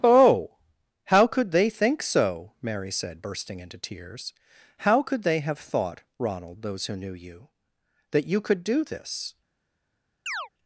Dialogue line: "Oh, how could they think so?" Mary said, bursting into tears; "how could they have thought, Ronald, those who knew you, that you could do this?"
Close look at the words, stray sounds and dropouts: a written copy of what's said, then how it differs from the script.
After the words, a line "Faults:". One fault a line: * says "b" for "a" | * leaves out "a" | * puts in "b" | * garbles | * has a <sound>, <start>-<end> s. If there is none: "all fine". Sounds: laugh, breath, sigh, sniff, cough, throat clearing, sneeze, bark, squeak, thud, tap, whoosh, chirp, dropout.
"Oh, how could they think so?" Mary said, bursting into tears; "how could they have thought, Ronald, those who knew you, that you could do this?"
Faults:
* has a chirp, 10.3-10.5 s